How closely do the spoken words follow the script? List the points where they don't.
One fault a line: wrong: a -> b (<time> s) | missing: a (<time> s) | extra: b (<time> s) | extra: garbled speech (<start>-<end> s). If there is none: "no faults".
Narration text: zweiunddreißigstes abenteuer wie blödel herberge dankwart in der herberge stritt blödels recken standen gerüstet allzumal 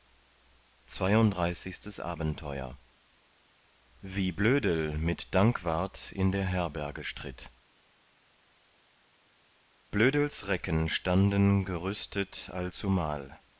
wrong: herberge -> mit (5.0 s)